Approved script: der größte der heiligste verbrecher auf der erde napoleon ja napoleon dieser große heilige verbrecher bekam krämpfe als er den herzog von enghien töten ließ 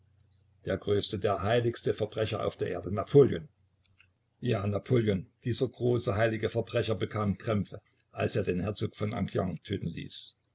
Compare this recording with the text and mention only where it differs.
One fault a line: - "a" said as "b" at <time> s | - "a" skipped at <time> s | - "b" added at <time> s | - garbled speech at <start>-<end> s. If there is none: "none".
none